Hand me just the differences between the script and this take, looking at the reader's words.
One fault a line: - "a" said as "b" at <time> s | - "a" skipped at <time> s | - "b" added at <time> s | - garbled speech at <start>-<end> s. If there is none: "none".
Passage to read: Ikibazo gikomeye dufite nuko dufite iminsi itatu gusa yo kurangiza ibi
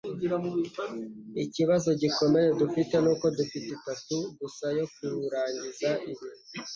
- "iminsi" skipped at 3.7 s